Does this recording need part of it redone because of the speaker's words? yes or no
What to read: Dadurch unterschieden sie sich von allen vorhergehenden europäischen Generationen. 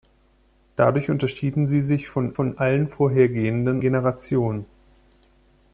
yes